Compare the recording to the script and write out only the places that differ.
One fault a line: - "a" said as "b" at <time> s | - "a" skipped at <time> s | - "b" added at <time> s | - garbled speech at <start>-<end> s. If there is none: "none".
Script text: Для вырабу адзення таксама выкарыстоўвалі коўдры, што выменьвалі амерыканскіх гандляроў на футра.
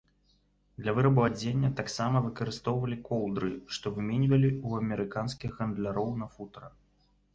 - "ў" added at 4.7 s